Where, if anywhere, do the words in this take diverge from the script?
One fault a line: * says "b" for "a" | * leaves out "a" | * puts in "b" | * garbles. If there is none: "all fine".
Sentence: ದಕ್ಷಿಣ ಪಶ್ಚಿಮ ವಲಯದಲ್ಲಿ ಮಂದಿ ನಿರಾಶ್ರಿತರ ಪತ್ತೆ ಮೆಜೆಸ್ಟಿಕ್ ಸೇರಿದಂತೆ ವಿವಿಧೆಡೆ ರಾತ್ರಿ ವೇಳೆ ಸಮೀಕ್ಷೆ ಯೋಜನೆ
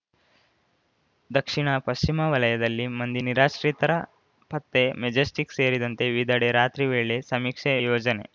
all fine